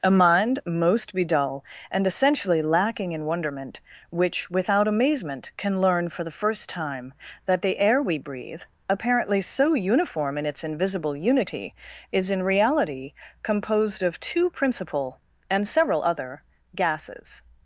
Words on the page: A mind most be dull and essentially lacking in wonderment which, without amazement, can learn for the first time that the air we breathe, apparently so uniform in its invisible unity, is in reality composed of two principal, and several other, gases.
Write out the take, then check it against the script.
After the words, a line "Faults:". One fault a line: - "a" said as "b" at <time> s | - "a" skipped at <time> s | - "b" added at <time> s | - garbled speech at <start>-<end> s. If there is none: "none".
A mind most be dull and essentially lacking in wonderment which, without amazement, can learn for the first time that the air we breathe, apparently so uniform in its invisible unity, is in reality composed of two principal, and several other, gases.
Faults:
none